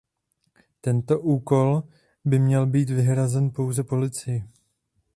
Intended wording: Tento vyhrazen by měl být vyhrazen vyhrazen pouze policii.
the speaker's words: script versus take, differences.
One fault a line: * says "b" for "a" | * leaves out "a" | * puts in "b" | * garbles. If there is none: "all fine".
* says "úkol" for "vyhrazen"
* leaves out "vyhrazen"